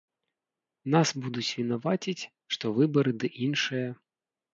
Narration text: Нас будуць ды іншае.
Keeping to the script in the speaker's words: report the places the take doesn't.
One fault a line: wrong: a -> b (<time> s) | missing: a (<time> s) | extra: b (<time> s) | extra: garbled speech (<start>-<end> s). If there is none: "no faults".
extra: вінаваціць што выбары (1.6 s)